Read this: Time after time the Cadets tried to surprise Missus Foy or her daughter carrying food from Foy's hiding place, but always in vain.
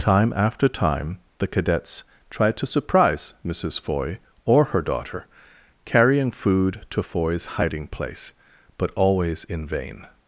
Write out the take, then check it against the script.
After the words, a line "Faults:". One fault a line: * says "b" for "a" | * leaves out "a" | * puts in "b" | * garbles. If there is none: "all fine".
Time after time the Cadets tried to surprise Missus Foy or her daughter carrying food to Foy's hiding place, but always in vain.
Faults:
* says "to" for "from"